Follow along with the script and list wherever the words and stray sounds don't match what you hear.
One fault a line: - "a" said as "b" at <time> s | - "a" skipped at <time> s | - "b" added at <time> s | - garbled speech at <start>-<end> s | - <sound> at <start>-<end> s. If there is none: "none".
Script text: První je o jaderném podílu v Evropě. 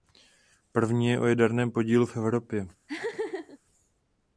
- laugh at 2.9-3.6 s